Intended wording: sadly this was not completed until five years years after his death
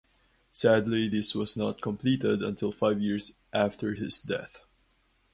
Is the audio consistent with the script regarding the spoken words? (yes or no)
no